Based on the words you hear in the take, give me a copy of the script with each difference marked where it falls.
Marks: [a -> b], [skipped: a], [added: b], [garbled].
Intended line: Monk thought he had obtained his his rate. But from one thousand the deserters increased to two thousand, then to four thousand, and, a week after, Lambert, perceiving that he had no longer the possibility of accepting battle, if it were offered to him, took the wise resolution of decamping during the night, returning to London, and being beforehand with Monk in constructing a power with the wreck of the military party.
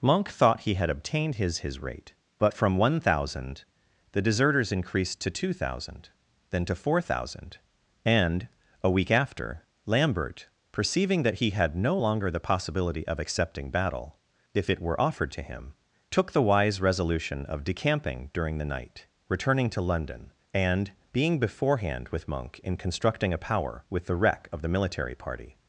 Monk thought he had obtained his his rate. But from one thousand the deserters increased to two thousand, then to four thousand, and, a week after, Lambert, perceiving that he had no longer the possibility of accepting battle, if it were offered to him, took the wise resolution of decamping during the night, returning to London, and being beforehand with Monk in constructing a power with the wreck of the military party.